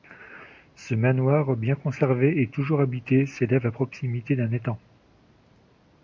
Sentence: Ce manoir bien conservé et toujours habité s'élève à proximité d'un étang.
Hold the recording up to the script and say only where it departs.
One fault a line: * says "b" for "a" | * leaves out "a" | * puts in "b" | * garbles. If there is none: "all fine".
all fine